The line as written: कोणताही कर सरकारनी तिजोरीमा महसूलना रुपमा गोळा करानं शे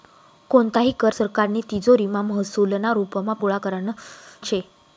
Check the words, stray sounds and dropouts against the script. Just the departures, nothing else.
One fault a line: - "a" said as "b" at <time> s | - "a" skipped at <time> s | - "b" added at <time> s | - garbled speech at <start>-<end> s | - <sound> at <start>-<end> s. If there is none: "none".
none